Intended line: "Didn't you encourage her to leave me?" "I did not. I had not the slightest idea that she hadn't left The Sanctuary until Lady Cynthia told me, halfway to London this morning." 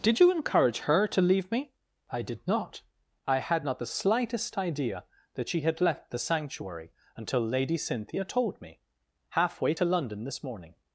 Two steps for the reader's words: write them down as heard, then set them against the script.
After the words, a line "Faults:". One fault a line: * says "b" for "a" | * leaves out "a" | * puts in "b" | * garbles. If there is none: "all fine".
"Did you encourage her to leave me?" "I did not. I had not the slightest idea that she had left The Sanctuary until Lady Cynthia told me, halfway to London this morning."
Faults:
* says "Did" for "Didn't"
* says "had" for "hadn't"